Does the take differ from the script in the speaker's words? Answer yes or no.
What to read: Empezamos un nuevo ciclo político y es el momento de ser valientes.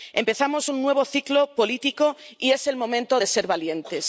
no